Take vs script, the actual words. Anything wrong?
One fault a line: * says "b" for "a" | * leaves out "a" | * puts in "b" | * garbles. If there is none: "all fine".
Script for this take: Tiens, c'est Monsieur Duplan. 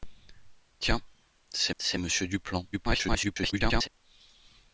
* puts in "c'est"
* garbles